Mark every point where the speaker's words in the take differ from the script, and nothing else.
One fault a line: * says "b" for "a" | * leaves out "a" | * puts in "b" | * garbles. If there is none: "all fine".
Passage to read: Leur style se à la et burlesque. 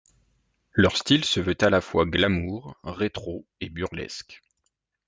* puts in "veut"
* puts in "fois glamour rétro"